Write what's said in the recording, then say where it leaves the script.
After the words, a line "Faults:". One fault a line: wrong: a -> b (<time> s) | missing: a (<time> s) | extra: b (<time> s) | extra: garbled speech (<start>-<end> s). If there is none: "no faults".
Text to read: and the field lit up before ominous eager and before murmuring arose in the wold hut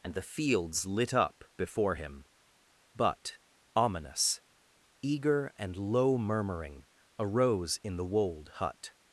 and the fields lit up before him but ominous eager and low murmuring arose in the wold hut
Faults:
wrong: field -> fields (0.2 s)
extra: him but (1.9 s)
wrong: before -> low (5.8 s)